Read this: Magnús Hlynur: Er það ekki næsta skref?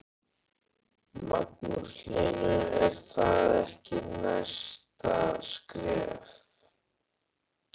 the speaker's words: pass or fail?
pass